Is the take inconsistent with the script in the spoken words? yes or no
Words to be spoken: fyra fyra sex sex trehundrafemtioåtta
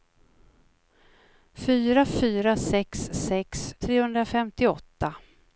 no